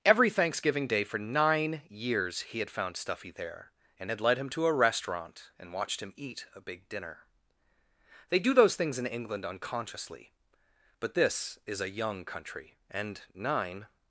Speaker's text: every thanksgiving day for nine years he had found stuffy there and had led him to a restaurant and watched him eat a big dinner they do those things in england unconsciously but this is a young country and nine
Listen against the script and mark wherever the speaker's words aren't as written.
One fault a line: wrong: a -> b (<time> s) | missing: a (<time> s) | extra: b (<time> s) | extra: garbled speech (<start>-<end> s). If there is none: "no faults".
no faults